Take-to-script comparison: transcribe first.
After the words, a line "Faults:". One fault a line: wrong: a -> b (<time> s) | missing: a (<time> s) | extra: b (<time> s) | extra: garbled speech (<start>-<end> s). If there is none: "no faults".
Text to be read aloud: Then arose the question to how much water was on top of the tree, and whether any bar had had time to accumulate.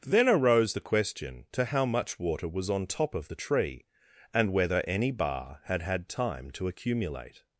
Then arose the question to how much water was on top of the tree, and whether any bar had had time to accumulate.
Faults:
no faults